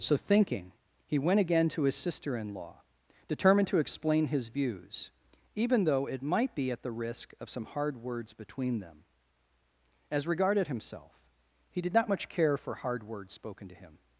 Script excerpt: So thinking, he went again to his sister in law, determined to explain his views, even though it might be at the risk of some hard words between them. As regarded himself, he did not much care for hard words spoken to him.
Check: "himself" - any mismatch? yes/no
no